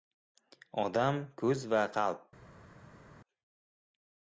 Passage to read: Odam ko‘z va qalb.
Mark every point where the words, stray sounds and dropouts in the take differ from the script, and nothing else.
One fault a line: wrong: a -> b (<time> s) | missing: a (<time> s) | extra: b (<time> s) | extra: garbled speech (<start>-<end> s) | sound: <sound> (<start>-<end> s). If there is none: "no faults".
no faults